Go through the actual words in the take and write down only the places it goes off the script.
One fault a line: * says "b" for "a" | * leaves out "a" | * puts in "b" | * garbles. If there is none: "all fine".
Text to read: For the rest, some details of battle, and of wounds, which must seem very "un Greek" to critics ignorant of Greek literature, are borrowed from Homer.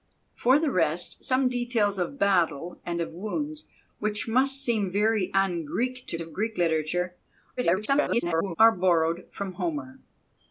* leaves out "critics ignorant"
* garbles